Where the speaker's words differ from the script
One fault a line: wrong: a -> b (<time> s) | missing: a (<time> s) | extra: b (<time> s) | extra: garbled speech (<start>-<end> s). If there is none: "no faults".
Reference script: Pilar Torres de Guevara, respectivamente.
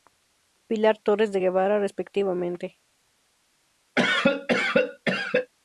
no faults